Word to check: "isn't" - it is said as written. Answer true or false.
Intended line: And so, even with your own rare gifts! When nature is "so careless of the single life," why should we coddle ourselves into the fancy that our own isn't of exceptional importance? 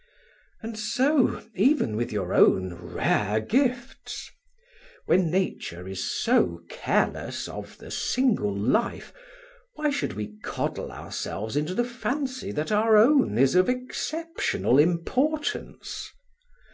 false